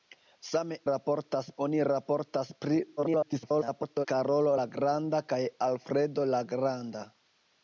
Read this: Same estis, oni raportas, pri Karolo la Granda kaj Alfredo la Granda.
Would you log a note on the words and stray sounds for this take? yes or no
yes